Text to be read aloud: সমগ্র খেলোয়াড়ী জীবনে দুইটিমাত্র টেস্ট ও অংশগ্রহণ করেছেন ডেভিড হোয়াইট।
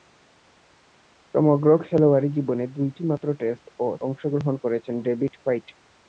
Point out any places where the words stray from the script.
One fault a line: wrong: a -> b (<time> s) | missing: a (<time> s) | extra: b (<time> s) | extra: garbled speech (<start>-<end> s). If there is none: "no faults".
no faults